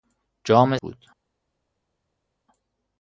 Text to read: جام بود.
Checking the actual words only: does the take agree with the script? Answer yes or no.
yes